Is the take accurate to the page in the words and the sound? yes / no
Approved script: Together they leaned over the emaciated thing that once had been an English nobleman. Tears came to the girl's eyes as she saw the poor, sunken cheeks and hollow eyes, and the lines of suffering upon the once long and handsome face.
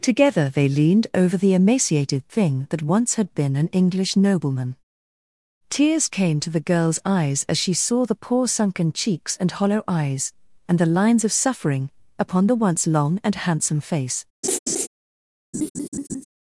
no